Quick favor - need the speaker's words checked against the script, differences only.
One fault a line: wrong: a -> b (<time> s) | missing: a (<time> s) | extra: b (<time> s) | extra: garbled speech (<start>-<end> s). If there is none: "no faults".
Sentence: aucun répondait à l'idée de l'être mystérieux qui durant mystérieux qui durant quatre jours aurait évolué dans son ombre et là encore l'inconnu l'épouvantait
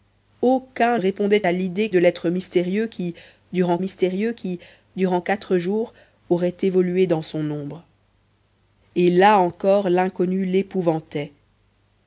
no faults